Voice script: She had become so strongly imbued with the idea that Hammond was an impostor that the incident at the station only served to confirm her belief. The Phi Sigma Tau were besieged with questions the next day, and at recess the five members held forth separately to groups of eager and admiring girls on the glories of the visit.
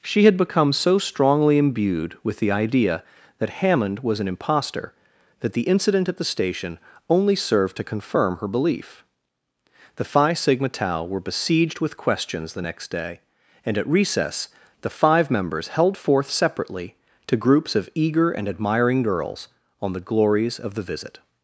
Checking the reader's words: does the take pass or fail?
pass